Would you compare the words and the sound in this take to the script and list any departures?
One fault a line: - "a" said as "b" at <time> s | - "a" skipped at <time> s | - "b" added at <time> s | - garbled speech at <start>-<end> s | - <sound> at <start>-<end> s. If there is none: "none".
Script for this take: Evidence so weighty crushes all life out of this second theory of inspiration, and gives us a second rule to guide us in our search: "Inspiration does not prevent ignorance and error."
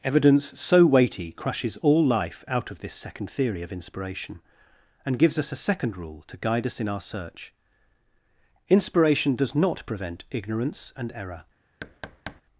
- thud at 11.8-12.4 s